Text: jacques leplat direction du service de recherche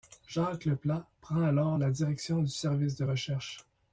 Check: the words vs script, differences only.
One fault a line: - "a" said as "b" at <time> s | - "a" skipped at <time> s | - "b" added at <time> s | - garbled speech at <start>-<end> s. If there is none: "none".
- "prend alors la" added at 1.2 s